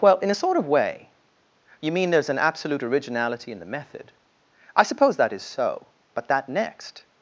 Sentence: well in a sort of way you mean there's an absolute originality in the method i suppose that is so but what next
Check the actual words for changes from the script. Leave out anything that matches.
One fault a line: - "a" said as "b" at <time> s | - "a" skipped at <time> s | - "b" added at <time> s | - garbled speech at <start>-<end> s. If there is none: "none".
- "what" said as "that" at 6.3 s